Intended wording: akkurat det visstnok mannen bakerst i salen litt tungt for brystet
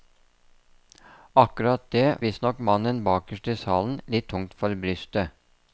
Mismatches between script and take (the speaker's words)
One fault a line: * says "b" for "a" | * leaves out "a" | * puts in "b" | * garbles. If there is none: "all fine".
all fine